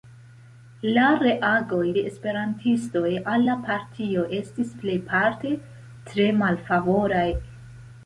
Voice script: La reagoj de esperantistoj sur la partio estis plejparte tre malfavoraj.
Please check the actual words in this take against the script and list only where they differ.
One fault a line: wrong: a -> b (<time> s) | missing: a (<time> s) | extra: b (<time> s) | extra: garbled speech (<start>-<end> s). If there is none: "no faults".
wrong: sur -> al (3.3 s)